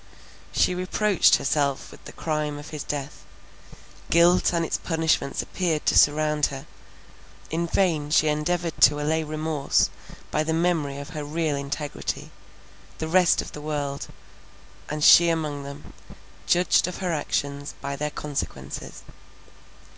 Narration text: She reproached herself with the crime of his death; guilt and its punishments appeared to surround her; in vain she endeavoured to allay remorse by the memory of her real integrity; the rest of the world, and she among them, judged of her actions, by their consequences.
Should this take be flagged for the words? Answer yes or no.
no